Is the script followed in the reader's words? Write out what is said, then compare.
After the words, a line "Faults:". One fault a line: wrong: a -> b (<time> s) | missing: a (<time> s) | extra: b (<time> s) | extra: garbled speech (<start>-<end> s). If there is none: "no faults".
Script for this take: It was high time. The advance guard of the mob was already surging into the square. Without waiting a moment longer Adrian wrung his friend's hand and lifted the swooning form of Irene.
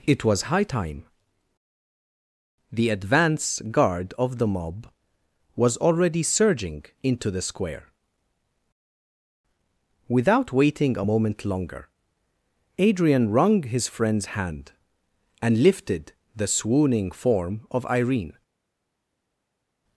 It was high time. The advance guard of the mob was already surging into the square. Without waiting a moment longer Adrian wrung his friend's hand and lifted the swooning form of Irene.
Faults:
no faults